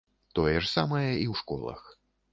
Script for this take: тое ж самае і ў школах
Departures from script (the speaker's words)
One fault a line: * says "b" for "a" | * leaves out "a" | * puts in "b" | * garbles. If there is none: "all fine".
all fine